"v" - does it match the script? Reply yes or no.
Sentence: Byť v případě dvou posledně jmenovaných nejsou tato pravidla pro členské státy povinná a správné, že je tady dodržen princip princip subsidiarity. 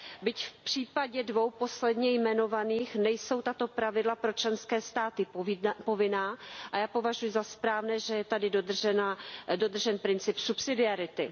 yes